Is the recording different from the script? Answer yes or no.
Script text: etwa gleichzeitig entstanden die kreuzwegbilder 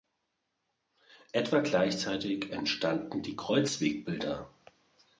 no